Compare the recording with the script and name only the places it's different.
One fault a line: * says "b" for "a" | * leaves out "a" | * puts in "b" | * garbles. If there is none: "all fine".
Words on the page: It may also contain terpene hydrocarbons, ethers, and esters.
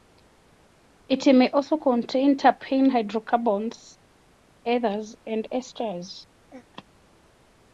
all fine